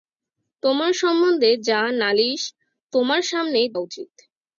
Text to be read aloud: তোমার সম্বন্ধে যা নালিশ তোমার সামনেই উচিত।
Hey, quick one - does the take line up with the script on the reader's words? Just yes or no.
yes